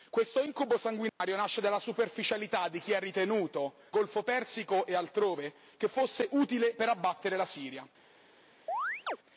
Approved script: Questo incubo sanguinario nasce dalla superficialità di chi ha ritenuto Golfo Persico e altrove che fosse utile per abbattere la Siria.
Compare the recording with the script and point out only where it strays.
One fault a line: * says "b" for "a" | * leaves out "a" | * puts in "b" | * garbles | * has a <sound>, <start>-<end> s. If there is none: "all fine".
* has a dropout, 1.1-1.2 s
* has a chirp, 8.7-9.2 s